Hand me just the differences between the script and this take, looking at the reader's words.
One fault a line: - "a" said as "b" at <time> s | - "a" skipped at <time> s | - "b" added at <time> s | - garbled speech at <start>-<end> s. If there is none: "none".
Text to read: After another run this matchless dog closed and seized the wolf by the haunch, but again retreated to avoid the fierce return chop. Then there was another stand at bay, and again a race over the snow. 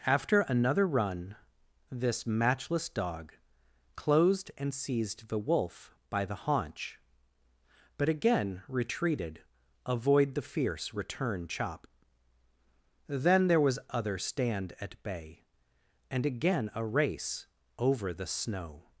- "to" skipped at 9.4 s
- "another" said as "other" at 13.9 s